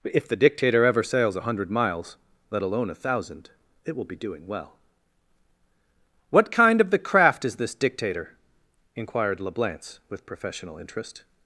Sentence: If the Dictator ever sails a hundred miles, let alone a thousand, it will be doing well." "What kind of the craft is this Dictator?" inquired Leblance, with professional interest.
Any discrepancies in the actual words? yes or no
no